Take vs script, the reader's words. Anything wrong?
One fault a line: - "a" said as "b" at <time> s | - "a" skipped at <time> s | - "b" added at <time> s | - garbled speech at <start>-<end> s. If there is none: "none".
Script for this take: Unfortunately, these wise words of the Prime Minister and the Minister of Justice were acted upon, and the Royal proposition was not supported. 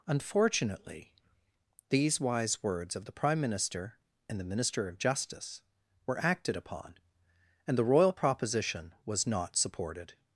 none